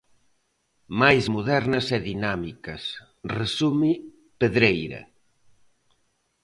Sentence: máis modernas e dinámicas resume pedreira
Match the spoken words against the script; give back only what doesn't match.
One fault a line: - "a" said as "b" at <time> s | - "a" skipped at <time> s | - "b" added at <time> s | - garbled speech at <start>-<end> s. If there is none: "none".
none